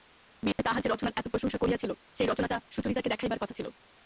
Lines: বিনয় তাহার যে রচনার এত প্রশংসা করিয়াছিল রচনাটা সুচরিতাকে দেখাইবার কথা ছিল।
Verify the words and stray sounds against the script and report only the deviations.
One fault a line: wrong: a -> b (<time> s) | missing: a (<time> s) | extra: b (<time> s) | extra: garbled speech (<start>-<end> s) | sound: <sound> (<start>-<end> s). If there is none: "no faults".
sound: dropout (0.5-0.6 s)
extra: সেই (2.1 s)